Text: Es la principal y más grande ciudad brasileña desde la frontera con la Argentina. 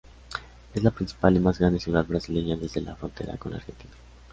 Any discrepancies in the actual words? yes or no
no